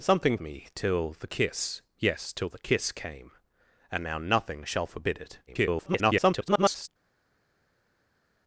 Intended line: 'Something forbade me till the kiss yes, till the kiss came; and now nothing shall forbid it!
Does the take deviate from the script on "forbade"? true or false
true